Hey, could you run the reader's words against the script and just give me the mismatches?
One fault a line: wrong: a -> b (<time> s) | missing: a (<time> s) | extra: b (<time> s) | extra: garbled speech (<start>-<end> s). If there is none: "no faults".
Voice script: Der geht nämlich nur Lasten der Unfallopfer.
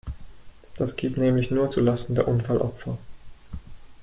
wrong: Der -> Das (0.8 s)
extra: zu (1.7 s)